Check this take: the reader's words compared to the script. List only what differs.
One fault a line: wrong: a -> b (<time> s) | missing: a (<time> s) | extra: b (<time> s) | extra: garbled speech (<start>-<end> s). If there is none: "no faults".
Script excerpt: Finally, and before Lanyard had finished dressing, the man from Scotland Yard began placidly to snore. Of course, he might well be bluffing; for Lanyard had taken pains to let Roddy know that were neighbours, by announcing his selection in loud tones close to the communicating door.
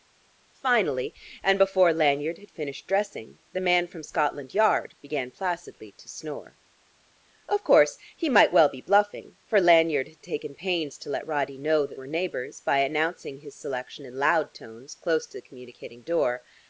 no faults